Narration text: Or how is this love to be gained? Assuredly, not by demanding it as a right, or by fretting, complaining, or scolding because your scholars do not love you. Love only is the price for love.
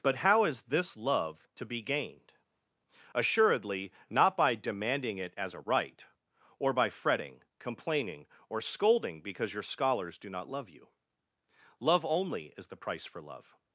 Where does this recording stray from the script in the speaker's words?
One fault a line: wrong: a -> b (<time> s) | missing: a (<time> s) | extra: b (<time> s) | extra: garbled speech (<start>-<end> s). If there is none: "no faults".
wrong: Or -> But (0.0 s)